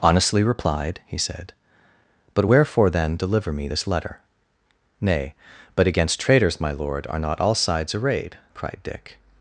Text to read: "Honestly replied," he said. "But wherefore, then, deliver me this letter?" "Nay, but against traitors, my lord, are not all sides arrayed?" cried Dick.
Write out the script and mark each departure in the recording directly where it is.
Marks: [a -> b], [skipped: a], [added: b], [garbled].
"Honestly replied," he said. "But wherefore, then, deliver me this letter?" "Nay, but against traitors, my lord, are not all sides arrayed?" cried Dick.